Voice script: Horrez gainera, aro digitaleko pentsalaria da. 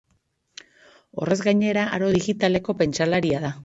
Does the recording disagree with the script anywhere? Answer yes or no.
no